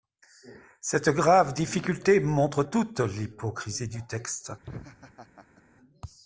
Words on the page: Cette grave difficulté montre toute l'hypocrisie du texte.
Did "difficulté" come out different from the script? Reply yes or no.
no